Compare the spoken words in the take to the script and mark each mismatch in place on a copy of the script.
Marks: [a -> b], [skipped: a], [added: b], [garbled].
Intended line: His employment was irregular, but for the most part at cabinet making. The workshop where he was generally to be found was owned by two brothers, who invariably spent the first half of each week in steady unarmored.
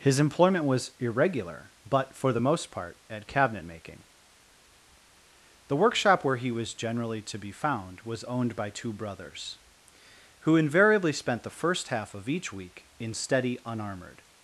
His employment was irregular, but for the most part at cabinet making. The workshop where he was generally to be found was owned by two brothers, who invariably spent the first half of each week in steady unarmored.